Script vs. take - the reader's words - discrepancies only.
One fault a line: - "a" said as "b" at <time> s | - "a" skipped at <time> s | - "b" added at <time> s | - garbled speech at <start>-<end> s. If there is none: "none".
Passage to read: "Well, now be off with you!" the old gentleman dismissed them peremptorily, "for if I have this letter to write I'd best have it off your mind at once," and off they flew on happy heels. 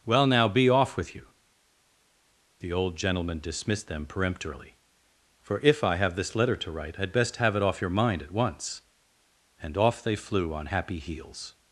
none